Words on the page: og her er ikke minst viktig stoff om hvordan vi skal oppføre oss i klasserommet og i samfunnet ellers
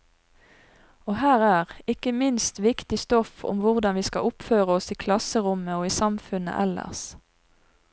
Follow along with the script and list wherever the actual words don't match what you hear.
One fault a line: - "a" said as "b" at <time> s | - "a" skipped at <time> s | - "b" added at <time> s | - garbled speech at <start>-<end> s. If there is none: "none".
none